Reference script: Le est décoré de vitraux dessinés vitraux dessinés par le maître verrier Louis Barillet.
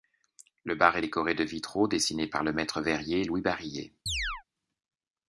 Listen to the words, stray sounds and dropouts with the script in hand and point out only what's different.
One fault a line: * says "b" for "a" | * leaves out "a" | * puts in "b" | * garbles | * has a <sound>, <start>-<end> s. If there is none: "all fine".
* puts in "bar"
* leaves out "vitraux dessinés"
* has a chirp, 4.1-4.4 s